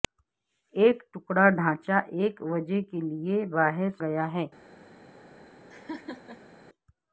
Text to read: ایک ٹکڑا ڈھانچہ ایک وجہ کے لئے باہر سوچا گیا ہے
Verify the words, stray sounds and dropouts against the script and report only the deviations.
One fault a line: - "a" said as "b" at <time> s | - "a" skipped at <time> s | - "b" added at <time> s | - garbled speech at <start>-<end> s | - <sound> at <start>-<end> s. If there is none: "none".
- "سوچا" skipped at 3.9 s
- laugh at 5.7-6.6 s